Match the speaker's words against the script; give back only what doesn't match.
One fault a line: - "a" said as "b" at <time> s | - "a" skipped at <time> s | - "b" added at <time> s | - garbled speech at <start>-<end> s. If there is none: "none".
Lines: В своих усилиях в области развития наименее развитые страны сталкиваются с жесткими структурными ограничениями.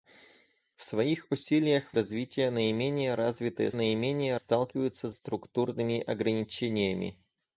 - "области" skipped at 2.0 s
- "страны" said as "наименее" at 3.7 s
- "жесткими" skipped at 5.1 s